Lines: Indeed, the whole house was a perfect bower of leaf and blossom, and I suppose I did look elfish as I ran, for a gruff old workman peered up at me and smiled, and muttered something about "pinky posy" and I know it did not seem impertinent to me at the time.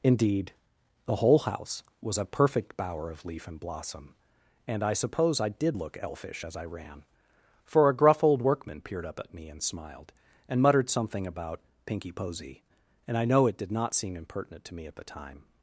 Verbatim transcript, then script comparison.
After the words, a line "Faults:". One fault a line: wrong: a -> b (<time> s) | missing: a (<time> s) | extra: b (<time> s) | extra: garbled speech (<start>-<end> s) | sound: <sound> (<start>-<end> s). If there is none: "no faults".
Indeed, the whole house was a perfect bower of leaf and blossom, and I suppose I did look elfish as I ran, for a gruff old workman peered up at me and smiled, and muttered something about "pinky posy" and I know it did not seem impertinent to me at the time.
Faults:
no faults